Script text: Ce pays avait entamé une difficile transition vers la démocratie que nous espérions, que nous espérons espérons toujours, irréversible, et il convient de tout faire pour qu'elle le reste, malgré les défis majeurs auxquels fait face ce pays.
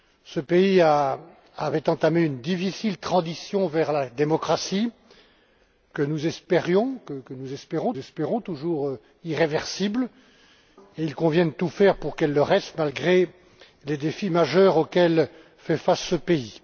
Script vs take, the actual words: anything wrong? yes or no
no